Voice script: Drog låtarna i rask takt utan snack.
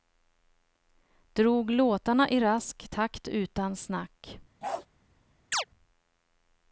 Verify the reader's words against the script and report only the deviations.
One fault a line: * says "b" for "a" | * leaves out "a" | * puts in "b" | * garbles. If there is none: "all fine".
all fine